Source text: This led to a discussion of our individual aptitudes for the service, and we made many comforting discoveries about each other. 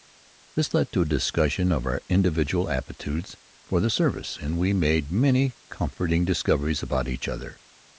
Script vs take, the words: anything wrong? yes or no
no